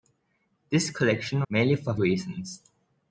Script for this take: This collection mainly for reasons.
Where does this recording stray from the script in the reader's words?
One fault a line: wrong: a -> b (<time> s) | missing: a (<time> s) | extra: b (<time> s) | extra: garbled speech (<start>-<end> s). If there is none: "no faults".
no faults